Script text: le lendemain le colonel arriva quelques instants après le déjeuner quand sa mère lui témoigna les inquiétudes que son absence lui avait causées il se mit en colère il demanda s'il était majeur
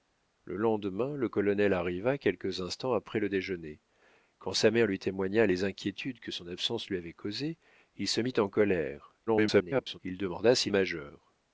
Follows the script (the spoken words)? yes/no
no